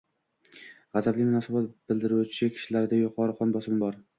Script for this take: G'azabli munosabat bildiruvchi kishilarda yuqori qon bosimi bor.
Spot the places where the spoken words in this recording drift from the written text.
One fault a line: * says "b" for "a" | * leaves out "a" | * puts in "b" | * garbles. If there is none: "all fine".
all fine